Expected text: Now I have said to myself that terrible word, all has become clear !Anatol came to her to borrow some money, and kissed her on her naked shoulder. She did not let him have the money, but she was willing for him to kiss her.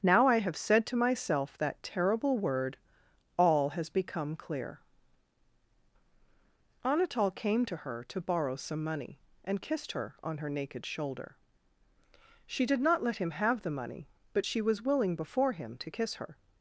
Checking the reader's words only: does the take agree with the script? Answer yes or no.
no